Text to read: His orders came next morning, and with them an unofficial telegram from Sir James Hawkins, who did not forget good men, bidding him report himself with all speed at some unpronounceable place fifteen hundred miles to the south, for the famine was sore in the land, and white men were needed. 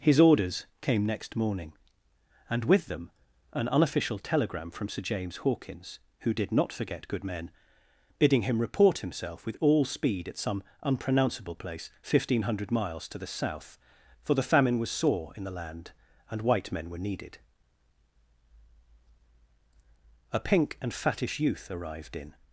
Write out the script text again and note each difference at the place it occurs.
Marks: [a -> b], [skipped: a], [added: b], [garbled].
His orders came next morning, and with them an unofficial telegram from Sir James Hawkins, who did not forget good men, bidding him report himself with all speed at some unpronounceable place fifteen hundred miles to the south, for the famine was sore in the land, and white men were needed. [added: A pink and fattish youth arrived in]